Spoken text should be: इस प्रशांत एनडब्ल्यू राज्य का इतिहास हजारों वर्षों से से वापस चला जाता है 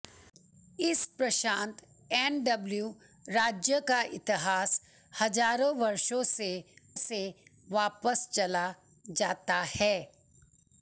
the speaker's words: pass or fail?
pass